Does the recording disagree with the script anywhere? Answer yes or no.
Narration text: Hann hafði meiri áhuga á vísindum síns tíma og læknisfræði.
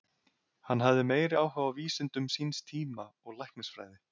no